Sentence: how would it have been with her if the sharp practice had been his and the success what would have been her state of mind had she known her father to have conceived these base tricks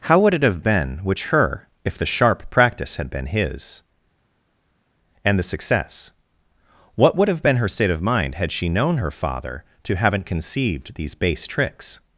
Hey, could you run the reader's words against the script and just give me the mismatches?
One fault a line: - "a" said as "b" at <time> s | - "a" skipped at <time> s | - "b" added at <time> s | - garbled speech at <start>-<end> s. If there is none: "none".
- "with" said as "which" at 1.0 s
- "have" said as "haven't" at 9.9 s